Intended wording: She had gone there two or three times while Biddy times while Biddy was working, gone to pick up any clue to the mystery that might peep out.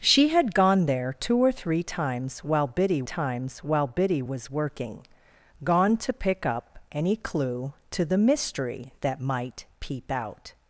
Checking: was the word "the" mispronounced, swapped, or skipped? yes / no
no